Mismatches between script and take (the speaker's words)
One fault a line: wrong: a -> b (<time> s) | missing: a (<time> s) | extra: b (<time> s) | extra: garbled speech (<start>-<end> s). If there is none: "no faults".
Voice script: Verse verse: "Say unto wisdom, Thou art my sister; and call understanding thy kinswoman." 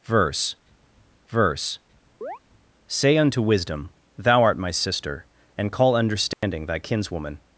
no faults